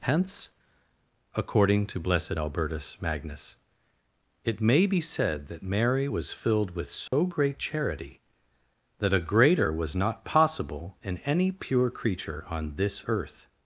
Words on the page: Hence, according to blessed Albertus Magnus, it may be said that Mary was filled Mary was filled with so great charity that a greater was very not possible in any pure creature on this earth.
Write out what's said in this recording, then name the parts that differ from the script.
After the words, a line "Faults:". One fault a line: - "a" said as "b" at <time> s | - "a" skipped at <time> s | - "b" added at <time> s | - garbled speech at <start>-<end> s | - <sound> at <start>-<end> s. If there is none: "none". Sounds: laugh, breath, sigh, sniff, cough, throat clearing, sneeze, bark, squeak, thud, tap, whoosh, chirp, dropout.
Hence, according to blessed Albertus Magnus, it may be said that Mary was filled with so great charity that a greater was not possible in any pure creature on this earth.
Faults:
- "Mary was filled" skipped at 6.8 s
- dropout at 7.1-7.1 s
- "very" skipped at 10.0 s